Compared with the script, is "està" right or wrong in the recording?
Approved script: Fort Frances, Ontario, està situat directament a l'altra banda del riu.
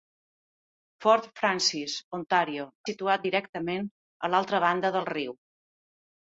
wrong